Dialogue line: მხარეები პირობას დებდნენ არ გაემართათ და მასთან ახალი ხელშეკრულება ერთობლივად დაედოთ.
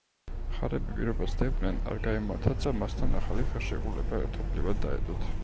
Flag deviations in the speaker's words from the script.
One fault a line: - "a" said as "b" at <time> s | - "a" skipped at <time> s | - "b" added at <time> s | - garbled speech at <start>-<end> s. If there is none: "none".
none